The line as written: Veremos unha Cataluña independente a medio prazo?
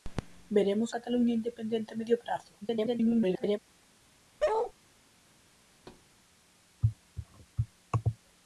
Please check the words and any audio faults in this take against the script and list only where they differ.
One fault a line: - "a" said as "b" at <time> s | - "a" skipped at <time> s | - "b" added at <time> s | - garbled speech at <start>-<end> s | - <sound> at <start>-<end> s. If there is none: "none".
- "unha" skipped at 0.9 s
- garbled speech at 2.6-3.6 s
- bark at 4.4-4.7 s
- thud at 5.7-6.1 s